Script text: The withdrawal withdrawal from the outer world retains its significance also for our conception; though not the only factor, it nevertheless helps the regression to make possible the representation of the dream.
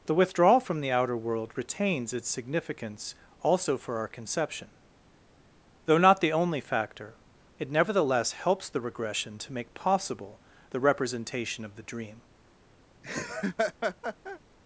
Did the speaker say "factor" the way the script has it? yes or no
yes